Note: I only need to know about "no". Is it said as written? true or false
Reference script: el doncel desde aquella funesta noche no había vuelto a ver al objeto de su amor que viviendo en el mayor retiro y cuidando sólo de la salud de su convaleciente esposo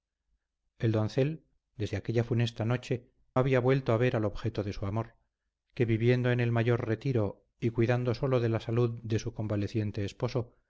false